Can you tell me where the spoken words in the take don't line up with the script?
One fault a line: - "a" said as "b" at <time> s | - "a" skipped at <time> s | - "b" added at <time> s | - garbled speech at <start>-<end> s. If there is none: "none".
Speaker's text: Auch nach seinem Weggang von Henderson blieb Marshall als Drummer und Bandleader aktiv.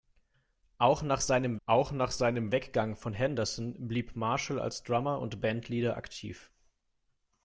- "auch nach seinem" added at 1.7 s